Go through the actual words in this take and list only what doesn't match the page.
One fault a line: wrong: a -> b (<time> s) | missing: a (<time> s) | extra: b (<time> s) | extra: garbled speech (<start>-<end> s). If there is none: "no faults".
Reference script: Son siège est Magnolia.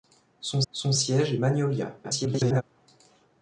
extra: son (0.7 s)
extra: garbled speech (2.0-2.6 s)